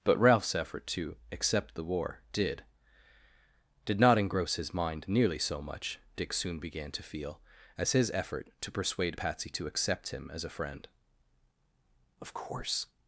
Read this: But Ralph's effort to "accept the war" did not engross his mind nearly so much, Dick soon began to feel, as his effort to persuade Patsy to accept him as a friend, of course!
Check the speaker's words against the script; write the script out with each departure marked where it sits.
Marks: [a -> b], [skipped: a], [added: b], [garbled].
But Ralph's effort to "accept the war" did [added: did] not engross his mind nearly so much, Dick soon began to feel, as his effort to persuade Patsy to accept him as a friend, of course!